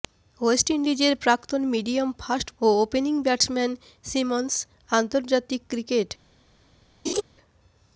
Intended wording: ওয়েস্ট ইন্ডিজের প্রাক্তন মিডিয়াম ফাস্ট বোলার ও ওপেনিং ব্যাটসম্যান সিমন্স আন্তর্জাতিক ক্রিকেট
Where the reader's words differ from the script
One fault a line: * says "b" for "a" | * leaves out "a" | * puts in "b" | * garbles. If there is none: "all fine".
* leaves out "বোলার"